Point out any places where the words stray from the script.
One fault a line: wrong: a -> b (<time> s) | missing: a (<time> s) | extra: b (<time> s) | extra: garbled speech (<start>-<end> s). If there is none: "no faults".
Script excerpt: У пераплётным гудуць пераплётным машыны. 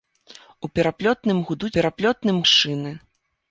no faults